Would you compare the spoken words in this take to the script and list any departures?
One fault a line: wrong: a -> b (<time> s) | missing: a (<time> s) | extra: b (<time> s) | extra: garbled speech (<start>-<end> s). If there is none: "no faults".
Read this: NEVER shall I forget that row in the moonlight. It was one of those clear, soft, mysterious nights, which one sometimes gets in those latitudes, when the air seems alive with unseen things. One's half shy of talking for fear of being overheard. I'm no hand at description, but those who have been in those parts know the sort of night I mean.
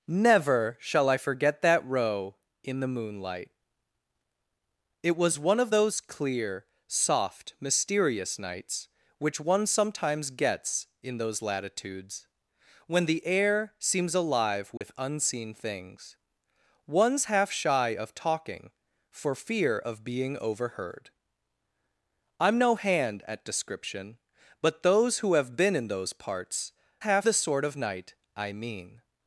wrong: know -> half (27.0 s)